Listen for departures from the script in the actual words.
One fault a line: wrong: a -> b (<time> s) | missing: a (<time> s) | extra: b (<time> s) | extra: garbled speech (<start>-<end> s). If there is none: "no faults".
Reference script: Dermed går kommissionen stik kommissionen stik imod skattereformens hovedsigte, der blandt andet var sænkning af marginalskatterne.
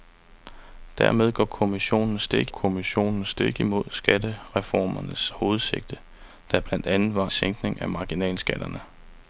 no faults